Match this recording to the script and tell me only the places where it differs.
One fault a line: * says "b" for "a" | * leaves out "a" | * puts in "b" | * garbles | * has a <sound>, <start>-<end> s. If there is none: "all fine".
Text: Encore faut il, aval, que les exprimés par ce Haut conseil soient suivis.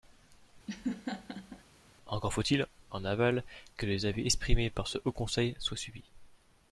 * has a laugh, 0.7-1.6 s
* puts in "en"
* puts in "avis"